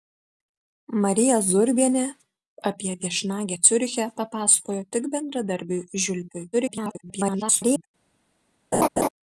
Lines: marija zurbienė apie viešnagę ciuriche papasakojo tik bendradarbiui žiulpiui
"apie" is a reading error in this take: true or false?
false